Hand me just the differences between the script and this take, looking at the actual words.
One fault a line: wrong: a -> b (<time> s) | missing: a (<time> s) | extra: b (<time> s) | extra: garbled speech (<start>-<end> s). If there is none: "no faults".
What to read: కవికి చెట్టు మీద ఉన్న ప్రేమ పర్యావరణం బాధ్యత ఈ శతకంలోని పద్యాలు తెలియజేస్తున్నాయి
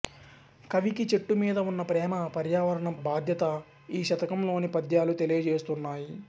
no faults